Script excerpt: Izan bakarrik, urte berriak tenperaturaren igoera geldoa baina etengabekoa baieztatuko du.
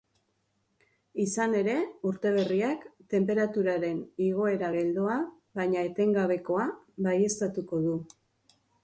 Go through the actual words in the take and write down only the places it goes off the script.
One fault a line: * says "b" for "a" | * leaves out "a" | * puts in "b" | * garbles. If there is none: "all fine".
* says "ere" for "bakarrik"